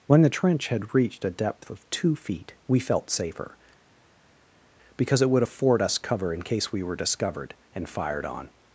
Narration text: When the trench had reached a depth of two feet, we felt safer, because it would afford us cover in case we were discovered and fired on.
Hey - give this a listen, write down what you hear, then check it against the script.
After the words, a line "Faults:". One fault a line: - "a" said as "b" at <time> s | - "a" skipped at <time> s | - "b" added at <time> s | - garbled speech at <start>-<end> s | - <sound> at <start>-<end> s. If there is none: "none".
When the trench had reached a depth of two feet, we felt safer, because it would afford us cover in case we were discovered and fired on.
Faults:
none